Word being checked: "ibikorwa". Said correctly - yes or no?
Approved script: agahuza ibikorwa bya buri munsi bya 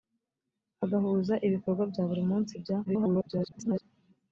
yes